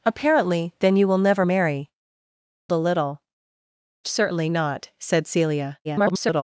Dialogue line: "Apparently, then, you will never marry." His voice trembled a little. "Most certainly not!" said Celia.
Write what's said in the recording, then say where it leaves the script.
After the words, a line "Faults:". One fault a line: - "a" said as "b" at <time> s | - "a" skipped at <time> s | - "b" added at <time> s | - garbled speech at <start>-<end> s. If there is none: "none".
"Apparently, then, you will never marry." A little. "Certainly not!" said Celia. [garbled]
Faults:
- "His voice trembled" skipped at 1.9 s
- "Most" skipped at 3.2 s
- garbled speech at 5.8-6.4 s